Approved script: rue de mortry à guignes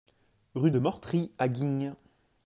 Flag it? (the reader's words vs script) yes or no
no